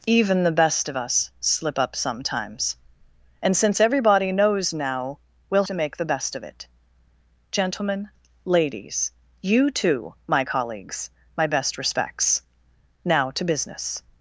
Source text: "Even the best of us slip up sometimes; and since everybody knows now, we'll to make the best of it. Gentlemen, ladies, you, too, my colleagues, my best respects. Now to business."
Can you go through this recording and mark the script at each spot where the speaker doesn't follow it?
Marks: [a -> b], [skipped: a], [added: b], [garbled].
"Even the best of us slip up sometimes; and since everybody knows now, we'll to make the best of it. Gentlemen, ladies, you, too, my colleagues, my best respects. Now to business."